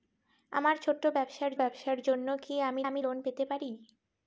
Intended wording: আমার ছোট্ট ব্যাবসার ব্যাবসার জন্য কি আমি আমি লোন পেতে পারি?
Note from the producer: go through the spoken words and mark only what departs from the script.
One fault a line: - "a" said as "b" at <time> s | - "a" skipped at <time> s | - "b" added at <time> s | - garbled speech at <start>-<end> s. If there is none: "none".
none